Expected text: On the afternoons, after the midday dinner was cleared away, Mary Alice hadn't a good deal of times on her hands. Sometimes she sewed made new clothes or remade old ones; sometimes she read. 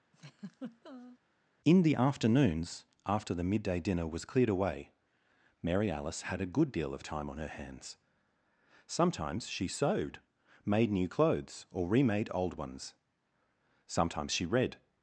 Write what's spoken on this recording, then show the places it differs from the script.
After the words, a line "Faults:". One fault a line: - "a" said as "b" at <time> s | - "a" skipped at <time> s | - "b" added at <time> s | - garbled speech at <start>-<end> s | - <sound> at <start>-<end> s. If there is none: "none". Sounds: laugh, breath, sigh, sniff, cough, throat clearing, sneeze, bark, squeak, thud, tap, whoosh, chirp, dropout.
In the afternoons, after the midday dinner was cleared away, Mary Alice had a good deal of time on her hands. Sometimes she sewed made new clothes or remade old ones; sometimes she read.
Faults:
- laugh at 0.1-1.2 s
- "On" said as "In" at 1.7 s
- "hadn't" said as "had" at 6.2 s
- "times" said as "time" at 7.0 s